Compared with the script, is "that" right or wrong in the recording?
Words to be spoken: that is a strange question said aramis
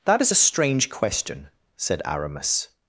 right